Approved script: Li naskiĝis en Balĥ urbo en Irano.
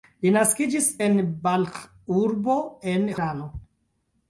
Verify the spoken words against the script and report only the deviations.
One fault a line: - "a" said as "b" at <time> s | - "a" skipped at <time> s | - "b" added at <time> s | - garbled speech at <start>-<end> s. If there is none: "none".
none